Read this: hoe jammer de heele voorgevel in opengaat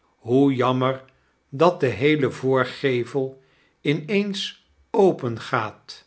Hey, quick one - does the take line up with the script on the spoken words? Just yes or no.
no